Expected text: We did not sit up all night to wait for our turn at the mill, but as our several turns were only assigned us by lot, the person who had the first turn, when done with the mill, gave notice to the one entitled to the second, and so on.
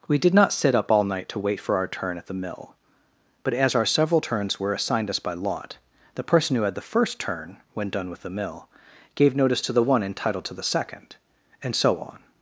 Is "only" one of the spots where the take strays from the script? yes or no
yes